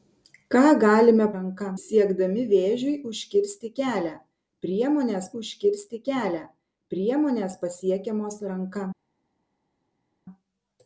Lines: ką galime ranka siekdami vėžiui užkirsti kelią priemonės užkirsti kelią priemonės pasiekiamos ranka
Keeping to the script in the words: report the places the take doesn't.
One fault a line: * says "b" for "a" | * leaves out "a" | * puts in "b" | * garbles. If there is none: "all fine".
all fine